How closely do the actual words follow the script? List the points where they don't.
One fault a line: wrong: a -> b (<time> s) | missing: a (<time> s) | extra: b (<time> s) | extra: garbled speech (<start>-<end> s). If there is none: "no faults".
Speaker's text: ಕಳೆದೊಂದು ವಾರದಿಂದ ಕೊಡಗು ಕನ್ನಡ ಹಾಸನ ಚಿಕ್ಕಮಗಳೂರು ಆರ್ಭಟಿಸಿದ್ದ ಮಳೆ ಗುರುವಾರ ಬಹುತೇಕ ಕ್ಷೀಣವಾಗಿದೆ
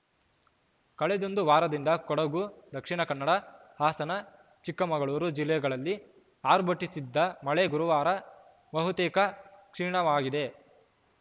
extra: ದಕ್ಷಿಣ (2.7 s)
extra: ಜಿಲ್ಲೆಗಳಲ್ಲಿ (5.4 s)